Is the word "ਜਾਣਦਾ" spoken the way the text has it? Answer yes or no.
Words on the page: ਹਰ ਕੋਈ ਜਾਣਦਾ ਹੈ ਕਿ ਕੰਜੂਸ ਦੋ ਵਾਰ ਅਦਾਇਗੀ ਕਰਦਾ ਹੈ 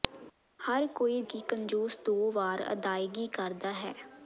no